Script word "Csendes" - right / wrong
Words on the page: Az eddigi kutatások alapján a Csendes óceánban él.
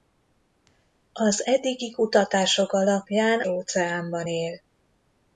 wrong